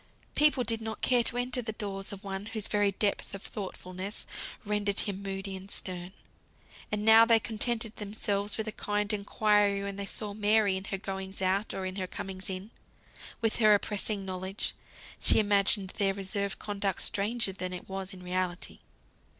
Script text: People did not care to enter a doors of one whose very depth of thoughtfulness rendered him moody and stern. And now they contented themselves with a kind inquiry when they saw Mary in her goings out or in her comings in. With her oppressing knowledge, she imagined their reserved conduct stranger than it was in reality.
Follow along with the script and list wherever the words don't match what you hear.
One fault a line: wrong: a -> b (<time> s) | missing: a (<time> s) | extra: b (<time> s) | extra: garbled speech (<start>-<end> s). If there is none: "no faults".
wrong: a -> the (1.6 s)